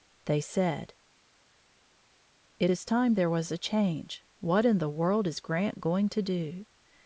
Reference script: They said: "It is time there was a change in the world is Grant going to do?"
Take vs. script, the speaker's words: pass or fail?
fail